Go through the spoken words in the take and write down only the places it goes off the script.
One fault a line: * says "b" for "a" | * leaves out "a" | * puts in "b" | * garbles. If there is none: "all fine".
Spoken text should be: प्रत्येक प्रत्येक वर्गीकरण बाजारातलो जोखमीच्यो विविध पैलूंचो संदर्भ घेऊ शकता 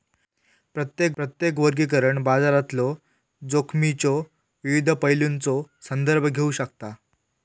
all fine